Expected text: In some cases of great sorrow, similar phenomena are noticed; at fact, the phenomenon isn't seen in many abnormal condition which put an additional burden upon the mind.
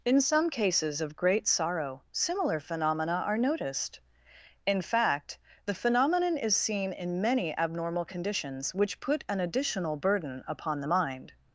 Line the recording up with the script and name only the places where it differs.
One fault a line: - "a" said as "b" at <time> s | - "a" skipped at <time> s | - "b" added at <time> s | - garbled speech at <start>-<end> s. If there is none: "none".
- "at" said as "in" at 4.7 s
- "isn't" said as "is" at 6.4 s
- "condition" said as "conditions" at 8.0 s